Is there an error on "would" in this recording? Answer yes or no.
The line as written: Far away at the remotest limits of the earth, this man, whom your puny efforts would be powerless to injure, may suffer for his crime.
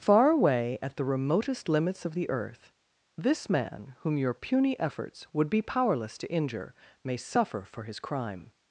no